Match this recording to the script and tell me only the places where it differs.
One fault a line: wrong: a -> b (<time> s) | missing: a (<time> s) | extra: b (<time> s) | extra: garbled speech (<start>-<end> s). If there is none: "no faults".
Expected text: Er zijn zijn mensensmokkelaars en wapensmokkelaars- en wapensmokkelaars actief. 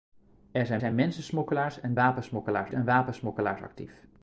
no faults